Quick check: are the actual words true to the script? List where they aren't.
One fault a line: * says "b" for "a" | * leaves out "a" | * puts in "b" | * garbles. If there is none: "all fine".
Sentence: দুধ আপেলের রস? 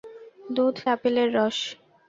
all fine